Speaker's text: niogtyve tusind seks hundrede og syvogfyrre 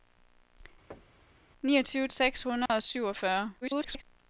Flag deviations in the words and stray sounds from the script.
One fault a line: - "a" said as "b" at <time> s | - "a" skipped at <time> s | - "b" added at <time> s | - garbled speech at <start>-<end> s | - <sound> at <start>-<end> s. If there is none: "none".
- thud at 0.9-1.4 s
- "tusind" skipped at 2.1 s
- dropout at 2.7-2.7 s
- garbled speech at 3.6-4.0 s